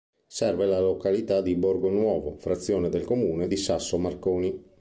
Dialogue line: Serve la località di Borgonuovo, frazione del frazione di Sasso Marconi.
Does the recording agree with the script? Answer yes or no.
no